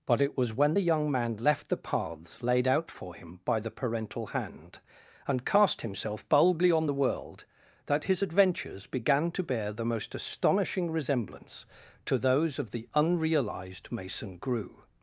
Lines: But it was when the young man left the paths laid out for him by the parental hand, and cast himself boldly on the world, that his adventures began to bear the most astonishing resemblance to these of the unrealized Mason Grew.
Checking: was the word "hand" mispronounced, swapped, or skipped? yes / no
no